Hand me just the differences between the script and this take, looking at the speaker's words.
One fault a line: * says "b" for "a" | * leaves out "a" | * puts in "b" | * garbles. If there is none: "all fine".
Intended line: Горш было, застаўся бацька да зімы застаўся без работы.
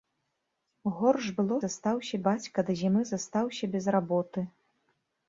all fine